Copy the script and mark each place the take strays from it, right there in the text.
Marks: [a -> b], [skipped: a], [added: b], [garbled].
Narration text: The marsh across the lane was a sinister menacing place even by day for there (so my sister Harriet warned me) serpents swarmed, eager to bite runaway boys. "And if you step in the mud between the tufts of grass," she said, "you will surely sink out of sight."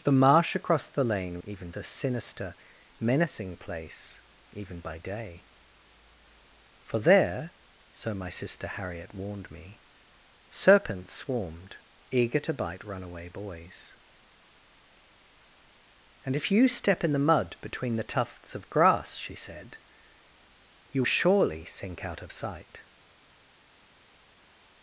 The marsh across the lane [was -> even] a sinister menacing place even by day for there (so my sister Harriet warned me) serpents swarmed, eager to bite runaway boys. "And if you step in the mud between the tufts of grass," she said, "you [skipped: will] surely sink out of sight."